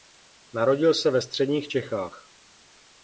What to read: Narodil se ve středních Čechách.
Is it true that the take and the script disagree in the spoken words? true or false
false